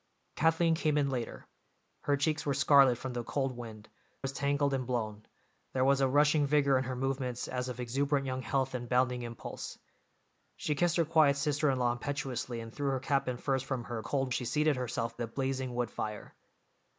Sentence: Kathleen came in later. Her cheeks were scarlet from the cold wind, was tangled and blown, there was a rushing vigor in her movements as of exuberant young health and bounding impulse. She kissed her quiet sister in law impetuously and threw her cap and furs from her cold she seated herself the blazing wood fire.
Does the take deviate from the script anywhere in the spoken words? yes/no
no